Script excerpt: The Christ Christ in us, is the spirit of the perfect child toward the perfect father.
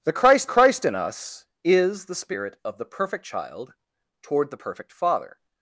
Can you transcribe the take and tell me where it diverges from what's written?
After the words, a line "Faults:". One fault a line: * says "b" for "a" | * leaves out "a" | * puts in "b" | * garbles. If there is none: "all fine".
The Christ Christ in us, is the spirit of the perfect child toward the perfect father.
Faults:
all fine